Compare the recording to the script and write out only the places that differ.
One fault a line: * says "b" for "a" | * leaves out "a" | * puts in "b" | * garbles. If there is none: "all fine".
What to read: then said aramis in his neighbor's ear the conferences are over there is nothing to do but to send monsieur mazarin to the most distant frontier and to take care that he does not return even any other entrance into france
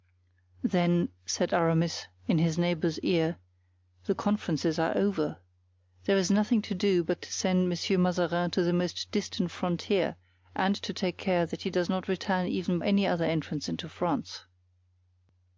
all fine